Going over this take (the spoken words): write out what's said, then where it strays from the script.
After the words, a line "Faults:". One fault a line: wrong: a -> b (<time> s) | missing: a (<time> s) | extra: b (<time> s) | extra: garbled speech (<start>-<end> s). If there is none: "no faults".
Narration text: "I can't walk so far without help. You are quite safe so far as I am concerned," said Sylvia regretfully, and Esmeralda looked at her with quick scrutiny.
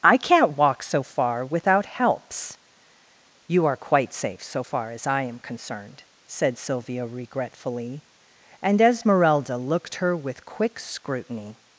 "I can't walk so far without helps. You are quite safe so far as I am concerned," said Sylvia regretfully, and Esmeralda looked her with quick scrutiny.
Faults:
wrong: help -> helps (1.9 s)
missing: at (10.0 s)